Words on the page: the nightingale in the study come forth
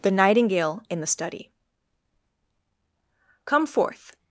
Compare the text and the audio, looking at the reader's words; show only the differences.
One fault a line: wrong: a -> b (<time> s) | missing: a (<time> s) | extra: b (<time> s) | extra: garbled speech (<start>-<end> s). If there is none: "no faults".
no faults